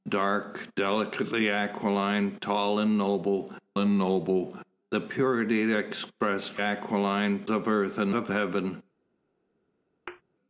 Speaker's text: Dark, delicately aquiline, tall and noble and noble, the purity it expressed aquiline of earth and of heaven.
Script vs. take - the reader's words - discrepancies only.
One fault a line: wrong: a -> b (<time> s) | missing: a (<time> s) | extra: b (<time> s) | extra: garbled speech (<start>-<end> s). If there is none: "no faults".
no faults